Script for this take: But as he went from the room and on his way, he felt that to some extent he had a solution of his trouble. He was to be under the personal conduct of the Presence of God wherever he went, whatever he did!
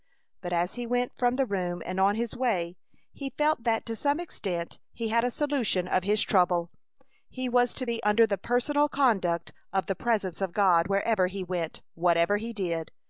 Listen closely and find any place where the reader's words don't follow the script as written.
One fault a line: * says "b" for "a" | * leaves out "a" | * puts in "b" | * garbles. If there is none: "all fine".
all fine